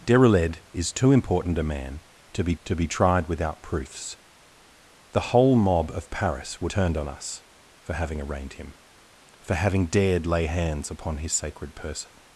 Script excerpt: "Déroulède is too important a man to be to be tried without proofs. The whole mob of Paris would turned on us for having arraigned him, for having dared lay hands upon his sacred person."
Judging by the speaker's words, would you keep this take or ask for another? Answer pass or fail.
pass